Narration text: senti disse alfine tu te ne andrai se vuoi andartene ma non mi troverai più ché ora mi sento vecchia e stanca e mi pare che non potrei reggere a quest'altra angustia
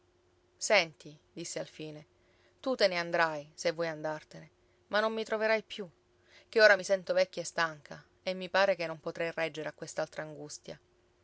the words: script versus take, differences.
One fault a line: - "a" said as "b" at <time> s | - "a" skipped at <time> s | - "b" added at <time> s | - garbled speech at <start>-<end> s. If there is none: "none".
none